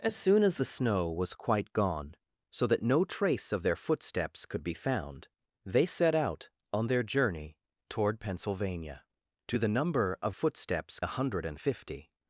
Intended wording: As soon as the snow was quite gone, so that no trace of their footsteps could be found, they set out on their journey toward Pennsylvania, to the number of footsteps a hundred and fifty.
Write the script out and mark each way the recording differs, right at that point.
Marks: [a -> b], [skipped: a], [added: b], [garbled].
As soon as the snow was quite gone, so that no trace of their footsteps could be found, they set out on their journey toward Pennsylvania, to the number of footsteps a hundred and fifty.